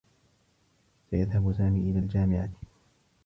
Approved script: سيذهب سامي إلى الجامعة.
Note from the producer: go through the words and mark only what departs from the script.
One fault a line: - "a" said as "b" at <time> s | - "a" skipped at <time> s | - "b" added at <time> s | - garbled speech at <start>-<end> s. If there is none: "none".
none